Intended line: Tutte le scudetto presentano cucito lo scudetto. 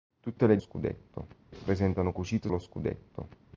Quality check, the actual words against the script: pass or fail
pass